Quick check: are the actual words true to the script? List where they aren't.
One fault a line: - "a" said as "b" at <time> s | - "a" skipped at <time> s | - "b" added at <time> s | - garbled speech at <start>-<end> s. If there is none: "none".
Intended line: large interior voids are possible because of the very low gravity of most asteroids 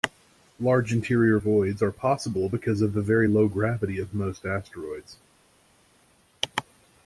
none